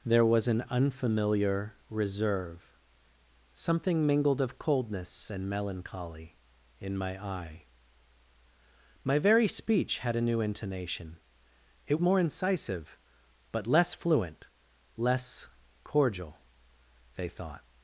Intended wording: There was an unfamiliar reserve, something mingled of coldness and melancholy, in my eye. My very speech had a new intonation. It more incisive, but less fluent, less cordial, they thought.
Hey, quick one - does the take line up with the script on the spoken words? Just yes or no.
yes